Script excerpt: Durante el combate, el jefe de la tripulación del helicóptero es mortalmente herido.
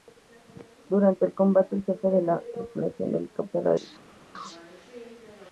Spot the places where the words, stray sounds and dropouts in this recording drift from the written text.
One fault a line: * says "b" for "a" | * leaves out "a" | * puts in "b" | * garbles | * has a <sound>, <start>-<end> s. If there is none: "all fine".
* leaves out "es mortalmente"